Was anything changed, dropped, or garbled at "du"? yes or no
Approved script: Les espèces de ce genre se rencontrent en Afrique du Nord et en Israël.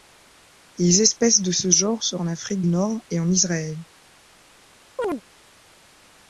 yes